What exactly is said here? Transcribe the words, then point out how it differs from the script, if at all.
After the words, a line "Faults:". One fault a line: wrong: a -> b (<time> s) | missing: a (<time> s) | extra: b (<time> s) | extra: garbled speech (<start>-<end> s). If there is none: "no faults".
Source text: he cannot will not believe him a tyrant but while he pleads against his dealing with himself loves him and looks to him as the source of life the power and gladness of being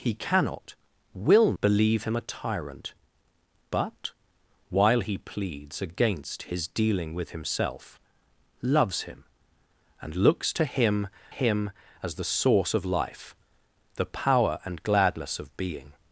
he cannot will believe him a tyrant but while he pleads against his dealing with himself loves him and looks to him him as the source of life the power and gladness of being
Faults:
missing: not (1.5 s)
extra: him (11.3 s)